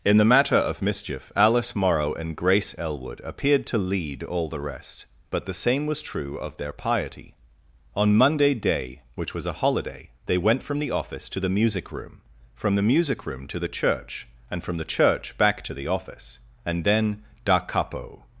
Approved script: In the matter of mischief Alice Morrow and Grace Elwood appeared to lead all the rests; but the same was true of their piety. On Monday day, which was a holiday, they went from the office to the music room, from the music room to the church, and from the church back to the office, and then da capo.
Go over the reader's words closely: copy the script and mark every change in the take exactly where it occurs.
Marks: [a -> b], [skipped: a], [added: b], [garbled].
In the matter of mischief Alice Morrow and Grace Elwood appeared to lead all the [rests; -> rest] but the same was true of their piety. On Monday day, which was a holiday, they went from the office to the music room, from the music room to the church, and from the church back to the office, and then da capo.